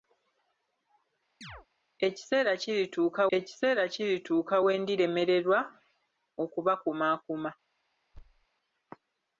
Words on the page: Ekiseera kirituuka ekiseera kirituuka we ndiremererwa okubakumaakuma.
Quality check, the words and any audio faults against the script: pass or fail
fail